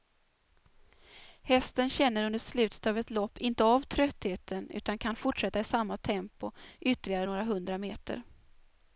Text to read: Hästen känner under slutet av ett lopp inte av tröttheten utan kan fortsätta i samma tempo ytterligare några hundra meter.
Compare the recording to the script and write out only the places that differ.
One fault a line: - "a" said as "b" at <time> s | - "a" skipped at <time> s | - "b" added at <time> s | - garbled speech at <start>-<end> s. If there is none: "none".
none